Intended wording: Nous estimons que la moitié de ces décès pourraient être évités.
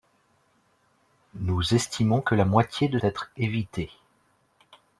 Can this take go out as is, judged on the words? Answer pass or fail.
fail